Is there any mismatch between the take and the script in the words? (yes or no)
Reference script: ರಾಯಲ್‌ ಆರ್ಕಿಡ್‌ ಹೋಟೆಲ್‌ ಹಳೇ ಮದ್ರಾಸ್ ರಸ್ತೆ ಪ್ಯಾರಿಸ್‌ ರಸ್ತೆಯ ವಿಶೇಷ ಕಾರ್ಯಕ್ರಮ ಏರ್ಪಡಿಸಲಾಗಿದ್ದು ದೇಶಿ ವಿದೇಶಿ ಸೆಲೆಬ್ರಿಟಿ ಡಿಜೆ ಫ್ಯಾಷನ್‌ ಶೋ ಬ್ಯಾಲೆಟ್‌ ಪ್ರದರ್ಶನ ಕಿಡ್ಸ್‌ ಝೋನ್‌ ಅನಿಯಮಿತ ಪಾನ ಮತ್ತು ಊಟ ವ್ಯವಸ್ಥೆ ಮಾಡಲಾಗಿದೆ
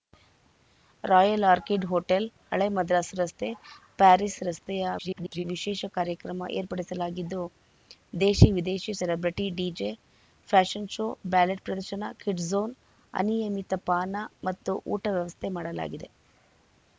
yes